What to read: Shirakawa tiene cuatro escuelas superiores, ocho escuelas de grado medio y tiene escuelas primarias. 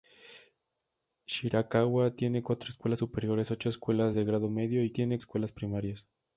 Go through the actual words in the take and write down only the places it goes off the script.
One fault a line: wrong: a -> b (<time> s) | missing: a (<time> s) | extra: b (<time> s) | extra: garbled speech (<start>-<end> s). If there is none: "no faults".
no faults